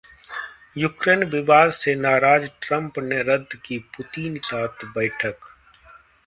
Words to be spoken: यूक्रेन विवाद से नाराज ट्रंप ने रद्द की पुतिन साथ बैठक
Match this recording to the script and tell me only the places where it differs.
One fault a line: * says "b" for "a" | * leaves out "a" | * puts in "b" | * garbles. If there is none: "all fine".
all fine